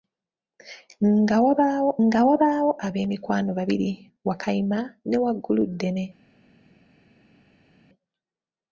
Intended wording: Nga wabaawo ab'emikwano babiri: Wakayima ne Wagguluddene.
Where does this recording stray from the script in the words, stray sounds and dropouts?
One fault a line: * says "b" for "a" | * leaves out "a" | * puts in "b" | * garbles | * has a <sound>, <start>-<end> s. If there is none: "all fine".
* puts in "nga wabaawo"